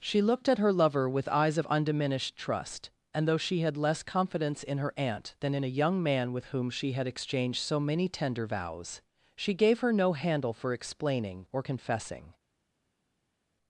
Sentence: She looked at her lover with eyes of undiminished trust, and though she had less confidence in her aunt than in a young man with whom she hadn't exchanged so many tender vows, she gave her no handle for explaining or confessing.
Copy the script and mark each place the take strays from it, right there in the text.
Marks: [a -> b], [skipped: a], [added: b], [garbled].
She looked at her lover with eyes of undiminished trust, and though she had less confidence in her aunt than in a young man with whom she [hadn't -> had] exchanged so many tender vows, she gave her no handle for explaining or confessing.